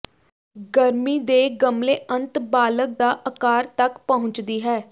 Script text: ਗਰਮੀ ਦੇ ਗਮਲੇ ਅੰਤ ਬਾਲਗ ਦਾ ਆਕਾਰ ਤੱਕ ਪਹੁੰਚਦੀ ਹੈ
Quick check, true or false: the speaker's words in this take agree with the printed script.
true